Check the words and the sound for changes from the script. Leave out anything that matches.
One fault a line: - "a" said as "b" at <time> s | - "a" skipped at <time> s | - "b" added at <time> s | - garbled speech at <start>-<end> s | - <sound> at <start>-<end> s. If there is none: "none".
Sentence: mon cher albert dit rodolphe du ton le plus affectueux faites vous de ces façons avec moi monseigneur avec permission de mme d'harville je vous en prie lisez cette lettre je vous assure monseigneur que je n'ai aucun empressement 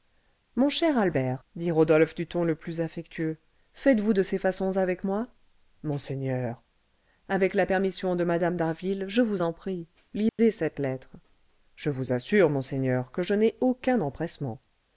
- "la" added at 7.5 s
- dropout at 10.3-10.4 s